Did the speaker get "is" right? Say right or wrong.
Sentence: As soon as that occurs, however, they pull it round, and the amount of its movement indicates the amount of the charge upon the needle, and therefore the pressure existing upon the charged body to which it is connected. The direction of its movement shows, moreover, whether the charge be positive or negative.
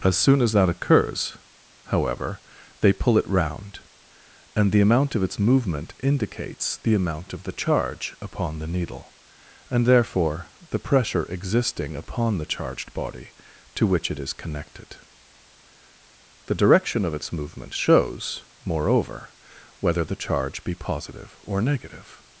right